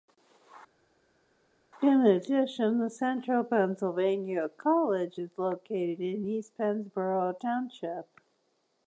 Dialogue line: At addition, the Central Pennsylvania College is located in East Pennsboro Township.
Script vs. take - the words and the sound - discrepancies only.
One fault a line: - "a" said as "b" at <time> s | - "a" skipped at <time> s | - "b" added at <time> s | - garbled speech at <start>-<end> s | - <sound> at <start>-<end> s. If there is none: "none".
- "At" said as "In" at 1.8 s